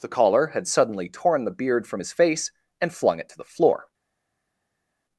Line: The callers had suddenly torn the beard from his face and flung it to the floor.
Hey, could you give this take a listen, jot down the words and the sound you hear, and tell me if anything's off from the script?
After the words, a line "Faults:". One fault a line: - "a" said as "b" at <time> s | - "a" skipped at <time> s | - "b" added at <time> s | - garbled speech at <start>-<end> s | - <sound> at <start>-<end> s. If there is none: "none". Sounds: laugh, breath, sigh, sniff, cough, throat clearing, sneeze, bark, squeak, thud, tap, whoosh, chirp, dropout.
The caller had suddenly torn the beard from his face and flung it to the floor.
Faults:
- "callers" said as "caller" at 0.1 s